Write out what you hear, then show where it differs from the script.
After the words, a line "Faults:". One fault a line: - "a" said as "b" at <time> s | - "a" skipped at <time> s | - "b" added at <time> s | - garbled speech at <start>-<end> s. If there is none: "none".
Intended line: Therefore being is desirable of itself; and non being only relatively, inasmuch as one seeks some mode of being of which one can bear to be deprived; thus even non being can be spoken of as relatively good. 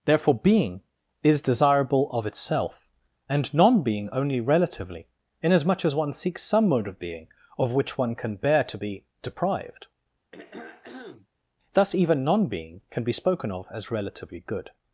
Therefore being is desirable of itself; and non being only relatively, inasmuch as one seeks some mode of being of which one can bear to be deprived; thus even non being can be spoken of as relatively good.
Faults:
none